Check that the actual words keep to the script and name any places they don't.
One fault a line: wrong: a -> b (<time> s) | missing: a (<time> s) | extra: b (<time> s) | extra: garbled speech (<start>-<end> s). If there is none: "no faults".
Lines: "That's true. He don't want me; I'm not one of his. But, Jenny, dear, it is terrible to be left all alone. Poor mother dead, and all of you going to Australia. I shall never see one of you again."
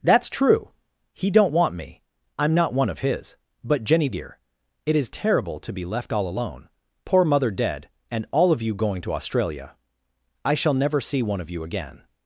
no faults